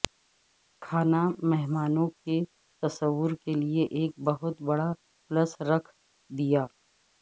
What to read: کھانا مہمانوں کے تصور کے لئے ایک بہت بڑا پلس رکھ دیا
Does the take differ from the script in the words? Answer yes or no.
no